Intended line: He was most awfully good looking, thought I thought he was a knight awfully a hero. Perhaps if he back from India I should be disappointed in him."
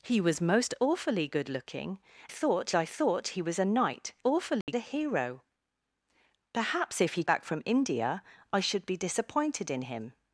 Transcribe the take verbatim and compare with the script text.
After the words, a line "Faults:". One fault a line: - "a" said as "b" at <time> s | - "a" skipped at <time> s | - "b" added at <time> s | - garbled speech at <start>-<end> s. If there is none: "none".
He was most awfully good looking, thought I thought he was a knight awfully a hero. Perhaps if he back from India I should be disappointed in him."
Faults:
none